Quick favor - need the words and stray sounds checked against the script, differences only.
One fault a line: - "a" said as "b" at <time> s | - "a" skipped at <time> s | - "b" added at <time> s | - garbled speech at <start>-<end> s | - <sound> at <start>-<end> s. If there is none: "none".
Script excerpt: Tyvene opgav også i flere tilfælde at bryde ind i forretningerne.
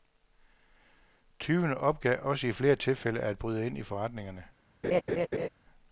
- laugh at 4.8-5.5 s